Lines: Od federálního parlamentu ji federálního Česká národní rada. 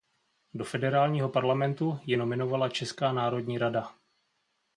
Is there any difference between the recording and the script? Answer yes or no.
yes